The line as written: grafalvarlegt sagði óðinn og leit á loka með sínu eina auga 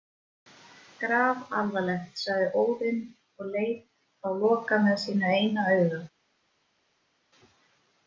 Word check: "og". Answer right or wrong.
right